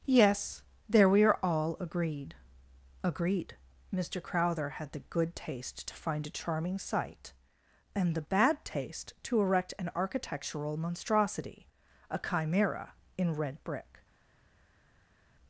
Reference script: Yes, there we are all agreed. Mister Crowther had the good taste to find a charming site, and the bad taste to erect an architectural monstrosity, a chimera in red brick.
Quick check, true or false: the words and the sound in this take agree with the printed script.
false